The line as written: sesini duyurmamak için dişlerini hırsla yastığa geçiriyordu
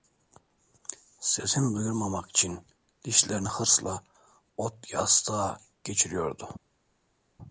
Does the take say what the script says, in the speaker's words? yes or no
no